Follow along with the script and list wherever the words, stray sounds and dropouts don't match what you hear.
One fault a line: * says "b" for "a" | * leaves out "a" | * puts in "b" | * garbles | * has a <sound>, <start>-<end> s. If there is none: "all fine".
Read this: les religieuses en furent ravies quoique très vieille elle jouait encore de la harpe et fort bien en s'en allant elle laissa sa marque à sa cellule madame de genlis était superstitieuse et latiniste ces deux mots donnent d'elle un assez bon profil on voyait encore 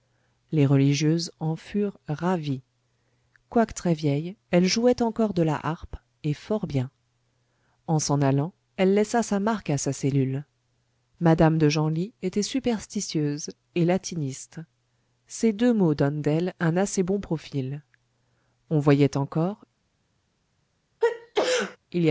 * has a sneeze, 21.0-21.8 s